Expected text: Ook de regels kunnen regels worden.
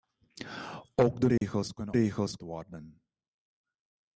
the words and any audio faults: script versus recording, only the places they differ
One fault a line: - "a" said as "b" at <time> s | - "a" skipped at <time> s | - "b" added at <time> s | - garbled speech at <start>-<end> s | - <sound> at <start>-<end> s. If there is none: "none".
- dropout at 1.4-1.4 s